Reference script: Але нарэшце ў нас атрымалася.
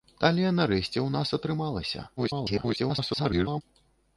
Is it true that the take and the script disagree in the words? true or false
true